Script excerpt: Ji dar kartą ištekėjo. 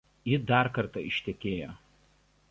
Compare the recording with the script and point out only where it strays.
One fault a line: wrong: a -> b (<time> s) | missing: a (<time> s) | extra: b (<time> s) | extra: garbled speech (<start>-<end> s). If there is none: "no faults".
no faults